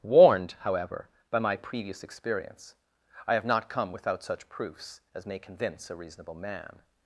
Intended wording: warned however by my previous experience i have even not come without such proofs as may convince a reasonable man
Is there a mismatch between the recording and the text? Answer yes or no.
yes